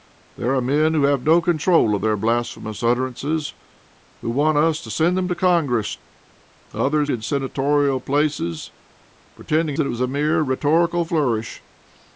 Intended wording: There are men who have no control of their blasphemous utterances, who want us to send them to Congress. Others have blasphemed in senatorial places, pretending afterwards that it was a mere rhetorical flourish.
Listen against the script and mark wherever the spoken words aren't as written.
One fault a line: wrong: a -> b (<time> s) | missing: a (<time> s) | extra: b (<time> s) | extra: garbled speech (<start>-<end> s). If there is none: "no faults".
missing: have blasphemed (7.1 s)
missing: afterwards (9.8 s)